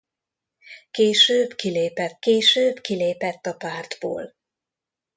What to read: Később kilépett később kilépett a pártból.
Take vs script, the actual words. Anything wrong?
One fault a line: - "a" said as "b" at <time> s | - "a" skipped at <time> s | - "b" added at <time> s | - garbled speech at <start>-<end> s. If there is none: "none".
none